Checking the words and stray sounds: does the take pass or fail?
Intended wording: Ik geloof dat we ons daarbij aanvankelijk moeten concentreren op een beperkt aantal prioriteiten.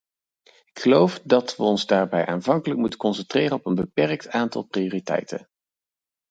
pass